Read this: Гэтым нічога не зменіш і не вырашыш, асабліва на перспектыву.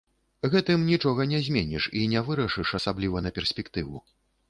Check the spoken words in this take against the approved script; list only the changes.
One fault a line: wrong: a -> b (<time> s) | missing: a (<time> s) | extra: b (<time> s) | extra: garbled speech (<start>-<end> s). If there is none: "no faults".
no faults